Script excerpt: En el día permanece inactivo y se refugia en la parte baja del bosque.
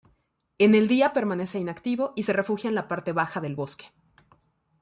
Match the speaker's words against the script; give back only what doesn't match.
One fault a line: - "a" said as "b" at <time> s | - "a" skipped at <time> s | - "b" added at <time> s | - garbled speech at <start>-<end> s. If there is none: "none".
none